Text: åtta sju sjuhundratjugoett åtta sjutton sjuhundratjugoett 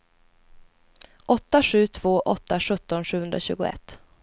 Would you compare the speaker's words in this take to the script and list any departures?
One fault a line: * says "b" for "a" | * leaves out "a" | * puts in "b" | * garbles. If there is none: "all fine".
* says "två" for "sjuhundratjugoett"